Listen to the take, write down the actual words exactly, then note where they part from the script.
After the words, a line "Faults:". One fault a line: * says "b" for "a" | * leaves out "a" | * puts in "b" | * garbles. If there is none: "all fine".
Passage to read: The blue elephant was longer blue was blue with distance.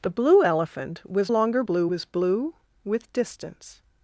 The blue elephant was longer blue was blue with distance.
Faults:
all fine